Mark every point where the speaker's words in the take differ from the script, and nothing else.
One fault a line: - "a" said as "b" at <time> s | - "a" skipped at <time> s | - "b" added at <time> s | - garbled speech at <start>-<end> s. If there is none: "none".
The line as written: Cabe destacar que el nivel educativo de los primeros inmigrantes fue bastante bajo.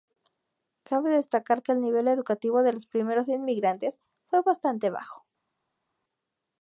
none